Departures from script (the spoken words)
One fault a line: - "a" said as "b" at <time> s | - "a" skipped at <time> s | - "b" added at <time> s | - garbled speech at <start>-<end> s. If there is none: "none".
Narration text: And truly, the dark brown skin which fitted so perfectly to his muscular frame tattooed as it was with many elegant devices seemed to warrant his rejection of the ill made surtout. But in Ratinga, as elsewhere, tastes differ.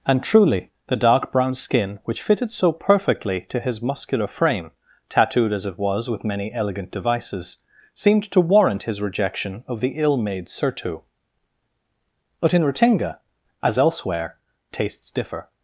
none